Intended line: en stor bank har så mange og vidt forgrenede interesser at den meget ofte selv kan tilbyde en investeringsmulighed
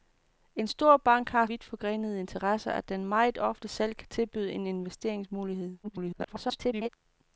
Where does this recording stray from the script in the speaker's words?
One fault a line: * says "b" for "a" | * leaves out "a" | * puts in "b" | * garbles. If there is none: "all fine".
* leaves out "så mange og"
* garbles